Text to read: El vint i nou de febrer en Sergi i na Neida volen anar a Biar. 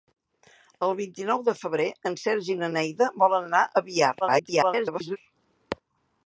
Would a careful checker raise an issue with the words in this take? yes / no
yes